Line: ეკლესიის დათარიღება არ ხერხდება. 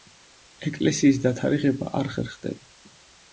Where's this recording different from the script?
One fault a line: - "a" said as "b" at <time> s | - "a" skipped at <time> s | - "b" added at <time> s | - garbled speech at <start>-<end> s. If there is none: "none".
none